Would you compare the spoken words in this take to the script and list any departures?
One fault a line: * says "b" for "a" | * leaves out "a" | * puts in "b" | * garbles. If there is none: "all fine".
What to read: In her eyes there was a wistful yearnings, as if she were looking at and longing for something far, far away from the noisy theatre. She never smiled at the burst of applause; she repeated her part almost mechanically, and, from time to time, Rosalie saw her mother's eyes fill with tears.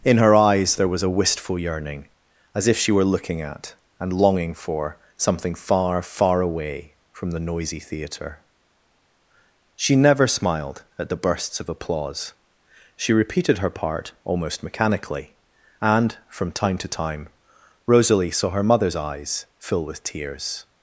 * says "yearning" for "yearnings"
* says "bursts" for "burst"